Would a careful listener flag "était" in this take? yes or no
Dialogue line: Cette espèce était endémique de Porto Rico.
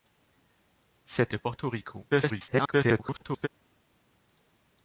yes